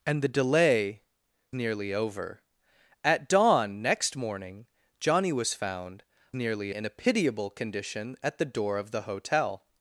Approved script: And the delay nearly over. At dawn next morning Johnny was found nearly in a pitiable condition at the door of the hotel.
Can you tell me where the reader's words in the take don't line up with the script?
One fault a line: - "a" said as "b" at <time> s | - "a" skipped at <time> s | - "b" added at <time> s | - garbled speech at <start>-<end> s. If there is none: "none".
none